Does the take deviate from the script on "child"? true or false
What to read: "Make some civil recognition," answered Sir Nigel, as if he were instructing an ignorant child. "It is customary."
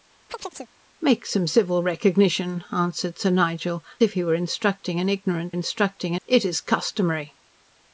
true